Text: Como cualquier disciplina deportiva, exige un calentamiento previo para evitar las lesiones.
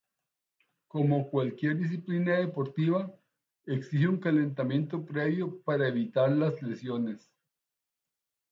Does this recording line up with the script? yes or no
yes